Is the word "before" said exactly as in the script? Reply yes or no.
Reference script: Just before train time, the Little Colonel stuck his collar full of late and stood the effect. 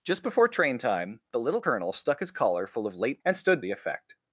yes